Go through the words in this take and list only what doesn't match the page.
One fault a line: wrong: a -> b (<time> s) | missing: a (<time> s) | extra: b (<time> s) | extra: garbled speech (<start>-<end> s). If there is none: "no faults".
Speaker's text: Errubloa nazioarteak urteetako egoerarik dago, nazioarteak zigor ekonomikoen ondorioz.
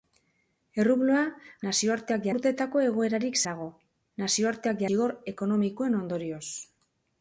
no faults